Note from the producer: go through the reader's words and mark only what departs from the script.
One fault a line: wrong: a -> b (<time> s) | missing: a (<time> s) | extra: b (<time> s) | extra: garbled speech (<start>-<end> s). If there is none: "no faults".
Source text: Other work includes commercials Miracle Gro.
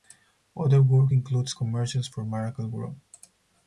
extra: for (2.1 s)